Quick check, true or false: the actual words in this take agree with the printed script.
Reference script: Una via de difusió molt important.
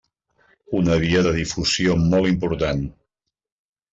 true